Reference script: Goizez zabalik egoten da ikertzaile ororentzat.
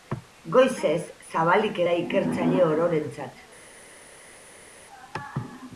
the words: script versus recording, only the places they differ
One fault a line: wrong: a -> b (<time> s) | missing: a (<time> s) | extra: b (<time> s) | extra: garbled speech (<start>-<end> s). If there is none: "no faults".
missing: egoten (1.8 s)